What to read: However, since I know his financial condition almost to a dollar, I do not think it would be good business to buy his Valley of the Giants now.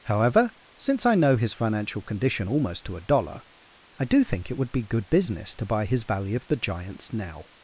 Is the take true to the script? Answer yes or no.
no